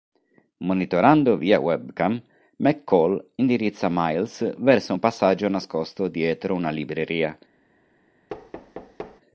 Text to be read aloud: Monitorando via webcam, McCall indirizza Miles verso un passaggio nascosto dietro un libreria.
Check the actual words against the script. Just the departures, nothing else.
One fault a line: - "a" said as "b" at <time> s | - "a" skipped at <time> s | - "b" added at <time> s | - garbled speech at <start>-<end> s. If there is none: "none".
- "un" said as "una" at 6.5 s